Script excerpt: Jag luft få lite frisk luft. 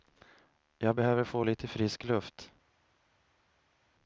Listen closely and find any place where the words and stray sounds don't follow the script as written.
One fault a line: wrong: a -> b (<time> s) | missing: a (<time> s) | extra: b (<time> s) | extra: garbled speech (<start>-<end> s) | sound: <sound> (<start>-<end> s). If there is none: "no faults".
wrong: luft -> behöver (0.9 s)